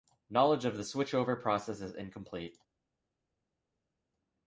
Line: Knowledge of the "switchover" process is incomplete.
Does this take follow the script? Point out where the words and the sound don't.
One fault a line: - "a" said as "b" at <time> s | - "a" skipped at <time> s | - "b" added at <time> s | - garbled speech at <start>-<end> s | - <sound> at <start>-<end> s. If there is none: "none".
none